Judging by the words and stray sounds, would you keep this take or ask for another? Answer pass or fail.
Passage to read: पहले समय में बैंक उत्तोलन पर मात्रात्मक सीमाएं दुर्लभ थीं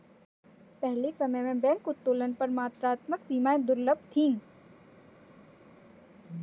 pass